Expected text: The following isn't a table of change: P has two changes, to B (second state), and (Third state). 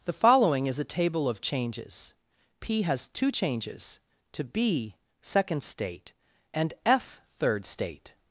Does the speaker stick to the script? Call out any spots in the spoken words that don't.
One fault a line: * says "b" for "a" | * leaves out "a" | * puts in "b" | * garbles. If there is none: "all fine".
* says "is" for "isn't"
* says "changes" for "change"
* puts in "F"